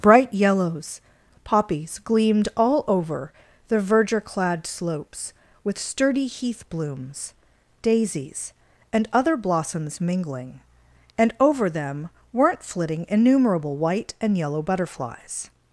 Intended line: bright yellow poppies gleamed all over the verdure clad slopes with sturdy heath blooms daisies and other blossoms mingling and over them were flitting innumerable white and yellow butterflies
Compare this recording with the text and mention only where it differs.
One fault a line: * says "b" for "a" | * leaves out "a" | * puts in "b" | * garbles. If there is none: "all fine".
* says "yellows" for "yellow"
* says "weren't" for "were"